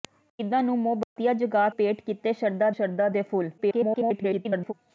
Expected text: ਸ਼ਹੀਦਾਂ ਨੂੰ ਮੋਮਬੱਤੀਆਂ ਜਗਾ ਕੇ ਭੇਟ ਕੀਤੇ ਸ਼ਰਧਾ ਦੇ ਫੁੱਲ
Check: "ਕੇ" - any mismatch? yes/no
yes